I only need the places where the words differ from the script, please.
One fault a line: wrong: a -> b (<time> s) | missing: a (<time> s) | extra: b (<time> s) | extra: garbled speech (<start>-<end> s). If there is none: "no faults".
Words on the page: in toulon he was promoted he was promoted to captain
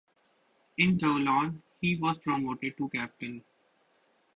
missing: he was promoted (2.8 s)